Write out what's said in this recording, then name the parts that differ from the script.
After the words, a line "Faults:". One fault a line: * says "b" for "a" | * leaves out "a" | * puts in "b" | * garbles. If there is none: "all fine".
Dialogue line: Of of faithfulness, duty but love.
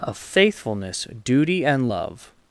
Of faithfulness, duty and love.
Faults:
* leaves out "of"
* says "and" for "but"